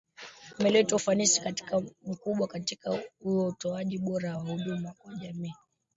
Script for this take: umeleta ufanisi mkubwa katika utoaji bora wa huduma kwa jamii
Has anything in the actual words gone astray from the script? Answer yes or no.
no